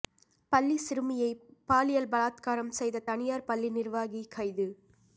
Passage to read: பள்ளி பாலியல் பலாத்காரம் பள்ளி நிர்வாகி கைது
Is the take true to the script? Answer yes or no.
no